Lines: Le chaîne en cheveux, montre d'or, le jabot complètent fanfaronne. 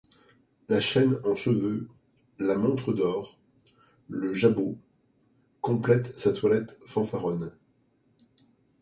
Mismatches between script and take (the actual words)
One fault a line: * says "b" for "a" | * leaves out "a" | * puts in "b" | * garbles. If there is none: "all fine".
* says "La" for "Le"
* puts in "la"
* puts in "sa toilette"